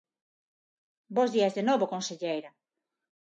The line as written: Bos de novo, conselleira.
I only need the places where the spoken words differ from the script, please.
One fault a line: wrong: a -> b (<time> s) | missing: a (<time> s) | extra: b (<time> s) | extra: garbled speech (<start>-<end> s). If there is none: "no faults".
extra: días (1.4 s)